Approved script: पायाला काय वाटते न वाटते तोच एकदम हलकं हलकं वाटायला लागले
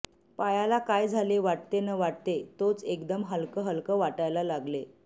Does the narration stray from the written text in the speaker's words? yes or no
yes